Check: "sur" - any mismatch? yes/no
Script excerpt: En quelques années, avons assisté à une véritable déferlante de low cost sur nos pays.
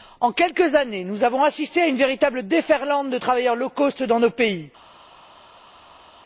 yes